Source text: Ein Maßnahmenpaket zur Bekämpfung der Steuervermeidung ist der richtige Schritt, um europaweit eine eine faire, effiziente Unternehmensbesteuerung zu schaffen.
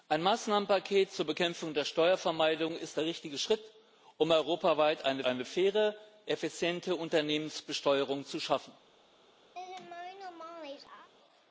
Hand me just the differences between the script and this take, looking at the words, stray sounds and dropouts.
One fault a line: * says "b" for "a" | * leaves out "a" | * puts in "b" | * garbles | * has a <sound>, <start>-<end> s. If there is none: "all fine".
* has a laugh, 9.5-11.1 s